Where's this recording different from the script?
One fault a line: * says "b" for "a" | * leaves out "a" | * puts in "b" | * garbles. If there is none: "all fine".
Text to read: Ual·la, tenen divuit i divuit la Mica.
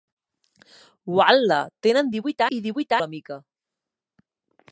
all fine